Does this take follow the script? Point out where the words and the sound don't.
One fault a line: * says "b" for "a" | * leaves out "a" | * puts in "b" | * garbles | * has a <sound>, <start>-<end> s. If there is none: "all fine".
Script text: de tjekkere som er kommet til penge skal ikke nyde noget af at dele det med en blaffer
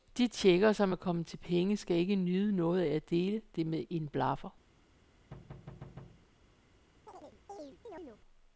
* has a thud, 5.3-6.3 s
* has a chirp, 7.1-8.2 s